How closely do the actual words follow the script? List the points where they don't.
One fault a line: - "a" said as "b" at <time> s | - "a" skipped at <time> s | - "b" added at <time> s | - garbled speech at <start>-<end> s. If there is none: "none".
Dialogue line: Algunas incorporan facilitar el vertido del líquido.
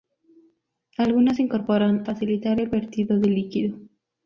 none